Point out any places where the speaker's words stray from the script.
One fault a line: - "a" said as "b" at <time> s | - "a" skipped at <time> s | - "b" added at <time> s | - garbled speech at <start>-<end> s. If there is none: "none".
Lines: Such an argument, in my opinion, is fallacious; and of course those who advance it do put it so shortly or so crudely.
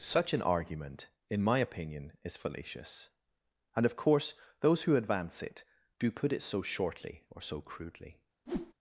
none